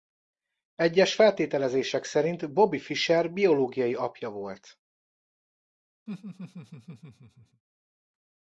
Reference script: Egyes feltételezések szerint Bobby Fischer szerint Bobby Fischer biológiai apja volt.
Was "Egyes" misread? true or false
false